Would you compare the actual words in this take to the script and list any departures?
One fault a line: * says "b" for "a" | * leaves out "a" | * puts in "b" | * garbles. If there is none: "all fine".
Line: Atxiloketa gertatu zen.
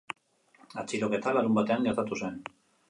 * puts in "larunbatean"